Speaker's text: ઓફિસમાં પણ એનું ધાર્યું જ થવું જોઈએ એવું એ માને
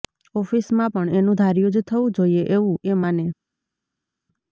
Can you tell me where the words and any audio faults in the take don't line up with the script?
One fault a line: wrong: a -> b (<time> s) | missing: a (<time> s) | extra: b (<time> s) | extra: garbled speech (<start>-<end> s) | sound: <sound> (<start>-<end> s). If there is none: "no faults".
no faults